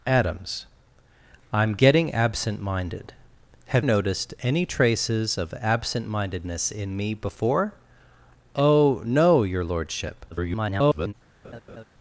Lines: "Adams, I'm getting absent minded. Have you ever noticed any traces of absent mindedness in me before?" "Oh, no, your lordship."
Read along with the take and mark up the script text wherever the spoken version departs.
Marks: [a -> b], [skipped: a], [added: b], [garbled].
"Adams, I'm getting absent minded. Have [skipped: you ever] noticed any traces of absent mindedness in me before?" "Oh, no, your lordship." [garbled]